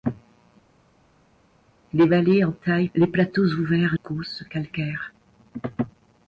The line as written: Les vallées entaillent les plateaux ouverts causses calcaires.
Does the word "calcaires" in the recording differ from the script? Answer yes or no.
no